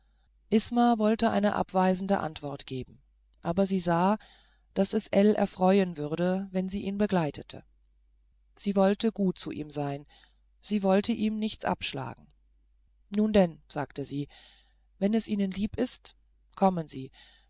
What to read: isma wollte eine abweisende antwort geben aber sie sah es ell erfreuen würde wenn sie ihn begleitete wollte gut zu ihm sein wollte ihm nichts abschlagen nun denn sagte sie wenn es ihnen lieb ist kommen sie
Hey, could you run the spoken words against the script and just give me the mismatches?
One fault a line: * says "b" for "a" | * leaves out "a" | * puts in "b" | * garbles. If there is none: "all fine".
* puts in "daß"
* puts in "sie"
* puts in "sie"